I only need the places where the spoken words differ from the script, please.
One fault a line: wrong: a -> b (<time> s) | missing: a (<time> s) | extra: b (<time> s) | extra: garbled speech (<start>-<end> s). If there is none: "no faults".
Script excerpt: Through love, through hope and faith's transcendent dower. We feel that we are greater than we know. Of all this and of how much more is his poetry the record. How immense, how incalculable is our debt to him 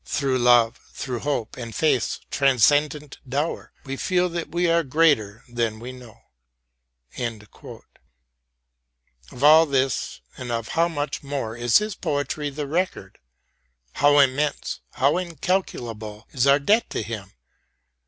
no faults